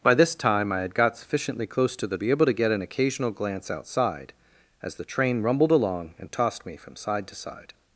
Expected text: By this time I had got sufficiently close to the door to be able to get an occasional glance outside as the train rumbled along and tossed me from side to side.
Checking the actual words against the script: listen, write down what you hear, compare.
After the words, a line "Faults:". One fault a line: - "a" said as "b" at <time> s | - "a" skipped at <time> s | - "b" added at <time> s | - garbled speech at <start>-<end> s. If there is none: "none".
By this time I had got sufficiently close to the be able to get an occasional glance outside as the train rumbled along and tossed me from side to side.
Faults:
- "door to" skipped at 2.2 s